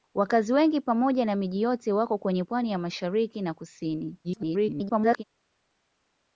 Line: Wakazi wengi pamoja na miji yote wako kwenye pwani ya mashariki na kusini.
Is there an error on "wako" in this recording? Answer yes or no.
no